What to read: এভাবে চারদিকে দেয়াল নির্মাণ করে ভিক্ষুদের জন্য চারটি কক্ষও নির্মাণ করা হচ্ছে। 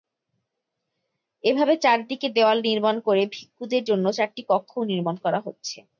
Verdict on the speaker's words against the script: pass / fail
pass